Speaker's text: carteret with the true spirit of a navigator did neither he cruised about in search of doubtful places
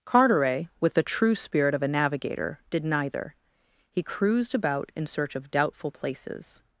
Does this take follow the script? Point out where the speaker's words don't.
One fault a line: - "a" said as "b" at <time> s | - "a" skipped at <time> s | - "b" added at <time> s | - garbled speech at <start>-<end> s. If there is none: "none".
none